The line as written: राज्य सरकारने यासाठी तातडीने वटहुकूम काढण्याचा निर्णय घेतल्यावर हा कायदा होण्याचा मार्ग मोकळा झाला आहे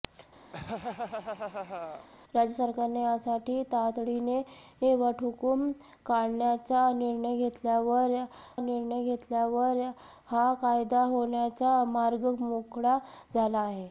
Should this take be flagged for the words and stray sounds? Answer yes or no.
yes